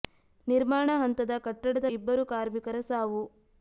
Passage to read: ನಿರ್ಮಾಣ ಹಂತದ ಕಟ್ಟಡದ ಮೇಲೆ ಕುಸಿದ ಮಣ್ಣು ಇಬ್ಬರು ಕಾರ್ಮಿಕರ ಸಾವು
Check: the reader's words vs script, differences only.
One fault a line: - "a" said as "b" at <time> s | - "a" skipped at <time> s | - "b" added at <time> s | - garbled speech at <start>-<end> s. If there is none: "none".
- "ಮೇಲೆ ಕುಸಿದ ಮಣ್ಣು" skipped at 1.9 s